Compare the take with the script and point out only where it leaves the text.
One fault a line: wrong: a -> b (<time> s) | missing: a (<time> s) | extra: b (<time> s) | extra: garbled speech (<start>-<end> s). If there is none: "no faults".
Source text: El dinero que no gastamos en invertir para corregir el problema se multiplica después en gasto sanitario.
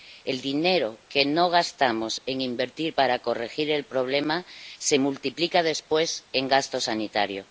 no faults